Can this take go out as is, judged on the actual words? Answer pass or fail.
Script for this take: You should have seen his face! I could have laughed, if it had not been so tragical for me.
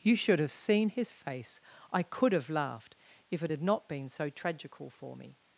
pass